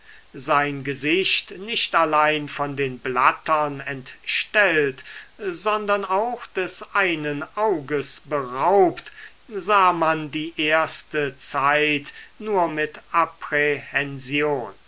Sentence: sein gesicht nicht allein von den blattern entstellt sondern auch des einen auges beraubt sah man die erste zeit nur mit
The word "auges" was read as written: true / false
true